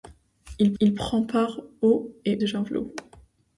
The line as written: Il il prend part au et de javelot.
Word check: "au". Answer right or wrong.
right